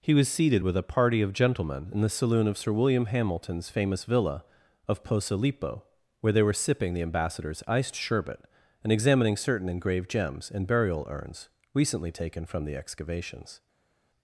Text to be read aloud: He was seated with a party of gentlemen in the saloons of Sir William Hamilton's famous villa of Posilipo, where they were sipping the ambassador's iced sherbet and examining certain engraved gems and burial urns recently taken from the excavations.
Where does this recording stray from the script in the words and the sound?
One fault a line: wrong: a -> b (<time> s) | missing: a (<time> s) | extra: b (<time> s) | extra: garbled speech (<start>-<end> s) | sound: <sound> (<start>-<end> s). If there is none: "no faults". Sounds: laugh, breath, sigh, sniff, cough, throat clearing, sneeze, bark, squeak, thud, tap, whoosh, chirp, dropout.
wrong: saloons -> saloon (2.1 s)